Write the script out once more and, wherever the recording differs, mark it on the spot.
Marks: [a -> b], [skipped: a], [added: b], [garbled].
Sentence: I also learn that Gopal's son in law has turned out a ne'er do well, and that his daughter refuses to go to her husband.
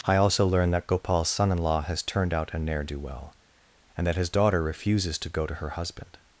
I also learn that Gopal's son in law has turned out a ne'er do well, and that his daughter refuses to go to her husband.